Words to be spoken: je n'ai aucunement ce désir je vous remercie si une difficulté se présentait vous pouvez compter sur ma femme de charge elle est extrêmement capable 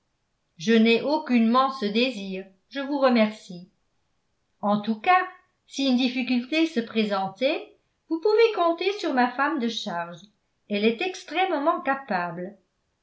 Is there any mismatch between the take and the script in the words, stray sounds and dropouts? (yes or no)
yes